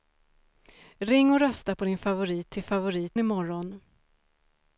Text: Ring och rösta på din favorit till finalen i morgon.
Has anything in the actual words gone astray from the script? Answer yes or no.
yes